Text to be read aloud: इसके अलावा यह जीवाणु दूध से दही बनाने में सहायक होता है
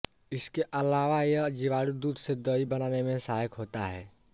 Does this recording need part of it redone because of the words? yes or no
no